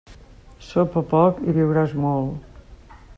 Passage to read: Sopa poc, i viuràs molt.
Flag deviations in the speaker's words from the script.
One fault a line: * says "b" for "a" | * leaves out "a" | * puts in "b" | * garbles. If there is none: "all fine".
all fine